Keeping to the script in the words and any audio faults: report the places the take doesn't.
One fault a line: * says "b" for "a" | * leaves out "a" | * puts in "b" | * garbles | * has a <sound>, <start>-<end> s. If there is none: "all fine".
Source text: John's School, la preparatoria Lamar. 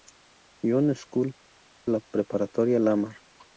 all fine